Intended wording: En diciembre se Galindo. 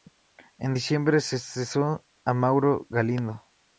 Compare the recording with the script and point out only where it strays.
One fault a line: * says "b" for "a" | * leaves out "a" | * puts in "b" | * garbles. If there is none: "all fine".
* puts in "cesó a Mauro"